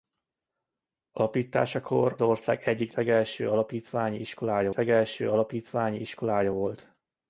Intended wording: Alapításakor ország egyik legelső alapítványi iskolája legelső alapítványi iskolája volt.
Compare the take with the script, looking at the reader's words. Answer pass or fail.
pass